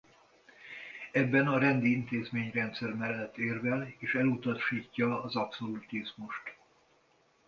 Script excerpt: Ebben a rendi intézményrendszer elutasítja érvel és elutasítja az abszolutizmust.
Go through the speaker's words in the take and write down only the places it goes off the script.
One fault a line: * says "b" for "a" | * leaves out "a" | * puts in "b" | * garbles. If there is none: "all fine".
* says "mellett" for "elutasítja"